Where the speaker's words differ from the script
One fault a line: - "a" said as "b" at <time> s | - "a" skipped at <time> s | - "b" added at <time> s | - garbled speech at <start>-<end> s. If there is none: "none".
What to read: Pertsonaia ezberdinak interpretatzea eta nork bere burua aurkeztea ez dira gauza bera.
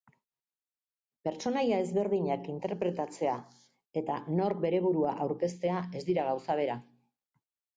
none